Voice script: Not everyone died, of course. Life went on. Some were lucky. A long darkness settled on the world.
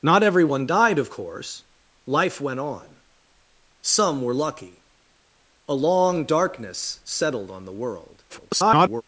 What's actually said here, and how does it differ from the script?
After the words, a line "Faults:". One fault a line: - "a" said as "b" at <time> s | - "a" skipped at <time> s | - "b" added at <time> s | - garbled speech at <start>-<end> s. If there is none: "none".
Not everyone died, of course. Life went on. Some were lucky. A long darkness settled on the world. [garbled]
Faults:
- garbled speech at 8.3-9.0 s